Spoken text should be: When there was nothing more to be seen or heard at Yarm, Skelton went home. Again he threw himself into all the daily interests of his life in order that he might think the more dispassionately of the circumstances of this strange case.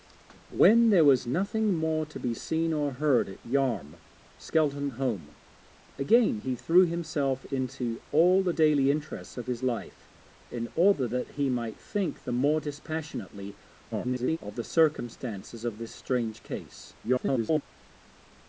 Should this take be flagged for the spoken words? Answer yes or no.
yes